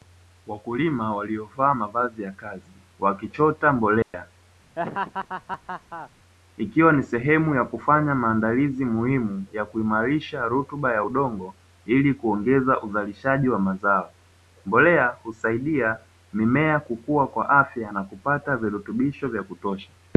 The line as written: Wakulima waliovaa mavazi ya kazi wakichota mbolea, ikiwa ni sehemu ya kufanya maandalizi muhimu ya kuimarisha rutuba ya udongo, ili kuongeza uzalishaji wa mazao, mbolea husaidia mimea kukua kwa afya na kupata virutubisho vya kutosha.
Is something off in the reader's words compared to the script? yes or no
no